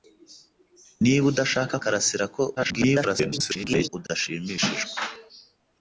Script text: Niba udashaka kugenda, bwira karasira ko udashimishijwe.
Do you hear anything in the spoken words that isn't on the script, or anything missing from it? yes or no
yes